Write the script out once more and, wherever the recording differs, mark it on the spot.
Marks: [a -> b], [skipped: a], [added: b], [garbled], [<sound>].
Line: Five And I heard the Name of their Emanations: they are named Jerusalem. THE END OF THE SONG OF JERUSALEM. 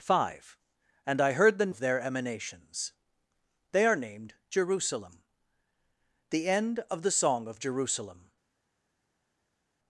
Five And I heard the [skipped: Name] of their Emanations: they are named Jerusalem. THE END OF THE SONG OF JERUSALEM.